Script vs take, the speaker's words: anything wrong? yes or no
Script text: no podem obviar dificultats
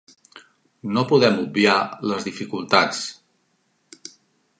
yes